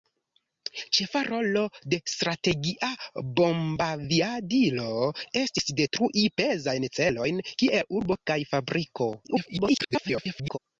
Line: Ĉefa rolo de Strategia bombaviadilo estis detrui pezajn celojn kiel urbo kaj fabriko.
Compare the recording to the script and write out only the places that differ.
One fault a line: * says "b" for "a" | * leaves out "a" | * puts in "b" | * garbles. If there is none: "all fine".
* garbles